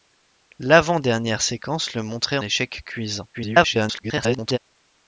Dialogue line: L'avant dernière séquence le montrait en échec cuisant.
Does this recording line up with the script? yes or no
no